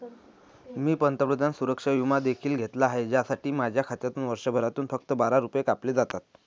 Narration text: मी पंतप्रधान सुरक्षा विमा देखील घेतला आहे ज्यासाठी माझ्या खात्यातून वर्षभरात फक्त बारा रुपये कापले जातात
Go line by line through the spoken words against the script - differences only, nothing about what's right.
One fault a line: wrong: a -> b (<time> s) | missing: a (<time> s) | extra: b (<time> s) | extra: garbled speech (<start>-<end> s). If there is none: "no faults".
no faults